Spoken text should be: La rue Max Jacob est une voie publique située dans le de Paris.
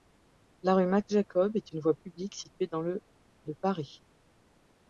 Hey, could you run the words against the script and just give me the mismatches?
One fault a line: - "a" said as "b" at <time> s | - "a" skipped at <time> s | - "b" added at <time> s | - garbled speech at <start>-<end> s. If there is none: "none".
none